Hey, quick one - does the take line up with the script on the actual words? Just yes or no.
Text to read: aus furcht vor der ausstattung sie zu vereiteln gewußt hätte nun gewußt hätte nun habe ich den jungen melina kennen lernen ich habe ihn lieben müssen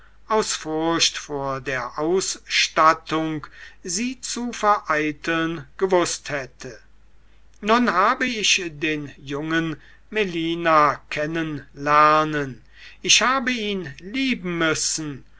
no